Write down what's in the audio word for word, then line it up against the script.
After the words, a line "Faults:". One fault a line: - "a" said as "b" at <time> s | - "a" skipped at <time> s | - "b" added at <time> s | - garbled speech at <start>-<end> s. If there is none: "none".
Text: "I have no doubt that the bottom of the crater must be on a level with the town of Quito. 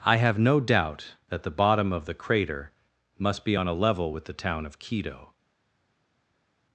"I have no doubt that the bottom of the crater must be on a level with the town of Quito.
Faults:
none